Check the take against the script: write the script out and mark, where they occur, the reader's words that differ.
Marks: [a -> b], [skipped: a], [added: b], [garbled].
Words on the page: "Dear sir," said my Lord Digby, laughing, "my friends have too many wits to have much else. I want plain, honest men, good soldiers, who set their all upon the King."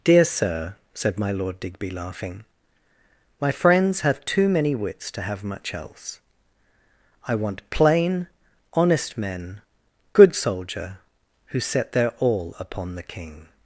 "Dear sir," said my Lord Digby, laughing, "my friends have too many wits to have much else. I want plain, honest men, good [soldiers, -> soldier] who set their all upon the King."